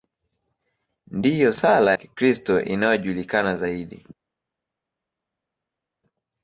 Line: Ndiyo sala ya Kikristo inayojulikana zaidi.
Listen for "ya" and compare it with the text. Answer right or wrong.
wrong